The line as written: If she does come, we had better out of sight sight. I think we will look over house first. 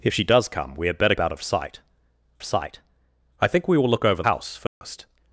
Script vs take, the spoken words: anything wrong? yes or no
no